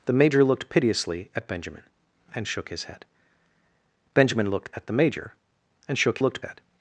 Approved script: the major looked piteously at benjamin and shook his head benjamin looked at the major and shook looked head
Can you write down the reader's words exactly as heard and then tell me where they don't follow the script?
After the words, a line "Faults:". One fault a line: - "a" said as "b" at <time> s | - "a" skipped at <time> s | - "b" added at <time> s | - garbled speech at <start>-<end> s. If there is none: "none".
the major looked piteously at benjamin and shook his head benjamin looked at the major and shook looked head
Faults:
none